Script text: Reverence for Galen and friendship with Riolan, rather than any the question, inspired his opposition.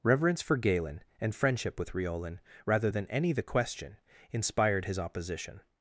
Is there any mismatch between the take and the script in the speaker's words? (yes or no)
no